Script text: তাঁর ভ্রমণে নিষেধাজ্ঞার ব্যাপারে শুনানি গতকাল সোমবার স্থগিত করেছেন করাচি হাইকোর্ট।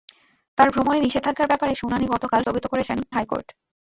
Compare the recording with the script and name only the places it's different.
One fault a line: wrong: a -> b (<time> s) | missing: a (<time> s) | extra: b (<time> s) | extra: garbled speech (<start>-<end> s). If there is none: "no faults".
missing: সোমবার (2.4 s)
missing: করাচি (3.0 s)